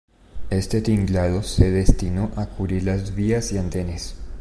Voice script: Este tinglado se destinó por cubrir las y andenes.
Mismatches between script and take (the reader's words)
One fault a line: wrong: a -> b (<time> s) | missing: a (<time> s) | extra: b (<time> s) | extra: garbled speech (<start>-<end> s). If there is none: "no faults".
wrong: por -> a (2.4 s)
extra: vías (3.1 s)